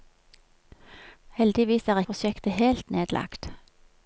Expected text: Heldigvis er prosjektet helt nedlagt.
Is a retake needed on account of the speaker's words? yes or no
no